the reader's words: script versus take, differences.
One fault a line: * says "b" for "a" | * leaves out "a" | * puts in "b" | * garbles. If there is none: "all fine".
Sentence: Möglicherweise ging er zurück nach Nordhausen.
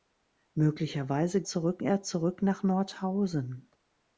* says "zurück" for "ging"